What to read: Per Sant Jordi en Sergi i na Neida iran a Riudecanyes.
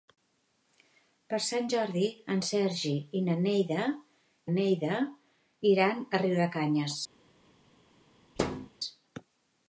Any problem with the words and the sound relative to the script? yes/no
yes